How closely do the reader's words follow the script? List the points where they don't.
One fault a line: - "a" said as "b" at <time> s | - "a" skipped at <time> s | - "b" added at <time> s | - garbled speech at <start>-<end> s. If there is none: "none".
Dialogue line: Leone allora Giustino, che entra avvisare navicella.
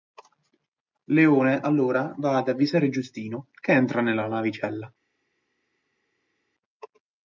- "va ad avvisare" added at 2.2 s
- "avvisare" said as "nella" at 4.0 s